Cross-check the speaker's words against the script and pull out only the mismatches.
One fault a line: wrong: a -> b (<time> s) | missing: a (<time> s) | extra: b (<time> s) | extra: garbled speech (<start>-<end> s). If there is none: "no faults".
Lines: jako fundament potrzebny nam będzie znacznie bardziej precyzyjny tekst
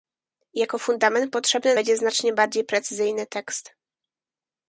missing: nam (1.8 s)